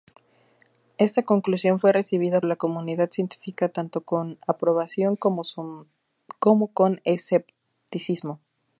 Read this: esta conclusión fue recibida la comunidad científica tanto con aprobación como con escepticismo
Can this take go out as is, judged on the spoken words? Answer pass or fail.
pass